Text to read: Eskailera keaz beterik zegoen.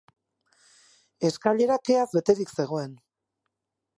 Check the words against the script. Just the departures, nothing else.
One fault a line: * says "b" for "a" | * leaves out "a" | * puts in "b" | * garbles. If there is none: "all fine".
all fine